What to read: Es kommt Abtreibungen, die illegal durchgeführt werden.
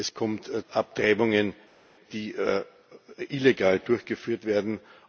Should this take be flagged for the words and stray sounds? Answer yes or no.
no